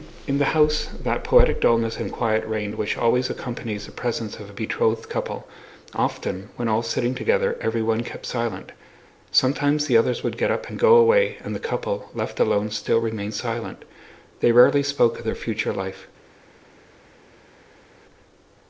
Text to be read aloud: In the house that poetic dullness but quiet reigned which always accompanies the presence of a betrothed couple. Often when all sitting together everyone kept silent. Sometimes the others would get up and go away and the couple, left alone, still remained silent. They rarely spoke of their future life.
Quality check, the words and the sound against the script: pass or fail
fail